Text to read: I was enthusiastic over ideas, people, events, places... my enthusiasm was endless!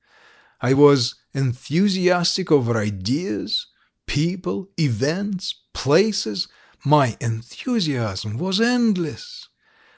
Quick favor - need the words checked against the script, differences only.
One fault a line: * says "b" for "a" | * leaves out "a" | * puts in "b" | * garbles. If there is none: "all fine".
all fine